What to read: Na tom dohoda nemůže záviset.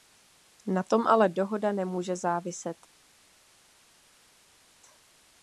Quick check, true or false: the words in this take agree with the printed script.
false